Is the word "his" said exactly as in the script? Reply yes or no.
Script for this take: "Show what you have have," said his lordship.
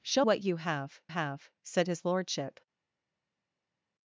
yes